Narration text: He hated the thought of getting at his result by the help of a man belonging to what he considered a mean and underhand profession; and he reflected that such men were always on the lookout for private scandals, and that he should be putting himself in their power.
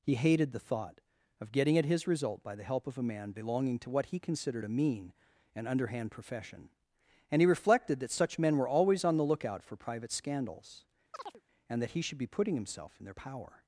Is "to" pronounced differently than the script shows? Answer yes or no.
no